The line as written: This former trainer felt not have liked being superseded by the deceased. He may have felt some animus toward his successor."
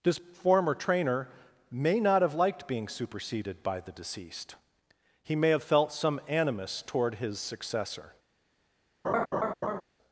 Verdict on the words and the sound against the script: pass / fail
fail